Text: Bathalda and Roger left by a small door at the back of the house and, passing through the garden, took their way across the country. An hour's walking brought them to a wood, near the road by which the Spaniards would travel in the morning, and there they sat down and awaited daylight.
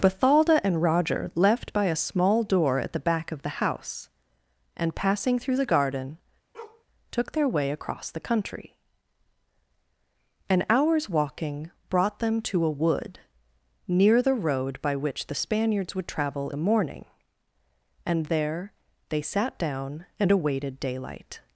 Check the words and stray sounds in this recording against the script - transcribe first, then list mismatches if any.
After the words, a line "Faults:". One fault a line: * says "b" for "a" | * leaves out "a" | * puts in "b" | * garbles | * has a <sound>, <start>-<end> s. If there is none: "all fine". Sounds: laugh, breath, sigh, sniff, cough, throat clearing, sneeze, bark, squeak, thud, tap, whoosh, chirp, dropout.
Bathalda and Roger left by a small door at the back of the house and, passing through the garden, took their way across the country. An hour's walking brought them to a wood, near the road by which the Spaniards would travel the morning, and there they sat down and awaited daylight.
Faults:
* has a bark, 6.5-6.8 s
* leaves out "in"